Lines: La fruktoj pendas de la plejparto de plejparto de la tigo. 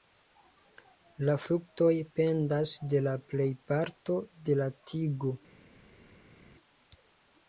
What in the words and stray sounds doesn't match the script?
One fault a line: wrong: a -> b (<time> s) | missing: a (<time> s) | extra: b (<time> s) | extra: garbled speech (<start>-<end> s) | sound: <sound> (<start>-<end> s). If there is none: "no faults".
missing: plejparto de (4.6 s)